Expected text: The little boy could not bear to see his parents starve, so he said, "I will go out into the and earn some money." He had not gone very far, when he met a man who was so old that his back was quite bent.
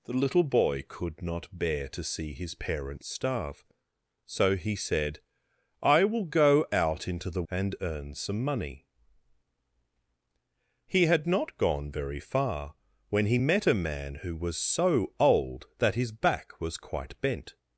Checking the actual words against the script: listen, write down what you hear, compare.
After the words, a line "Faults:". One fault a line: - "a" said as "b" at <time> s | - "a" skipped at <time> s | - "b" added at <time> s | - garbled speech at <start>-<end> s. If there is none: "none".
The little boy could not bear to see his parents starve, so he said, "I will go out into the and earn some money." He had not gone very far, when he met a man who was so old that his back was quite bent.
Faults:
none